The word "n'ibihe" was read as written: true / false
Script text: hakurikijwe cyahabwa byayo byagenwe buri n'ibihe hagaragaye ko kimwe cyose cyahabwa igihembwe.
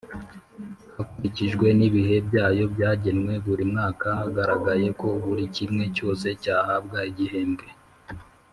false